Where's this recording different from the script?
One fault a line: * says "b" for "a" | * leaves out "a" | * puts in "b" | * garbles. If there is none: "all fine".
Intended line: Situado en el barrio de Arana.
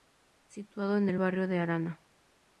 all fine